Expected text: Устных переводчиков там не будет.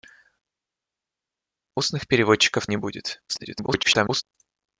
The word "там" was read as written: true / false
false